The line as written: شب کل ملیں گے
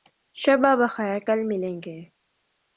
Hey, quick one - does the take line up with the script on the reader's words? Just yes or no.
no